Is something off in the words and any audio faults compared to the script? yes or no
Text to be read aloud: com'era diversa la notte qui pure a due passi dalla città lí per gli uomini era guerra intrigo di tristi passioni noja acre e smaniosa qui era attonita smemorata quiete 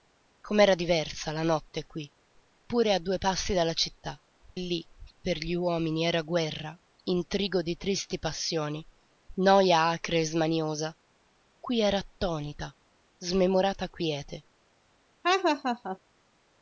yes